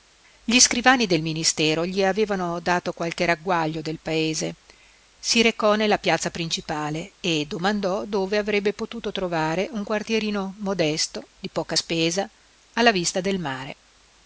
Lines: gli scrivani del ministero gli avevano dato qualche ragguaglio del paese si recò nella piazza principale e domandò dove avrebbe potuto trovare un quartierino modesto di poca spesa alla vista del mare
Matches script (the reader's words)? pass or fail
pass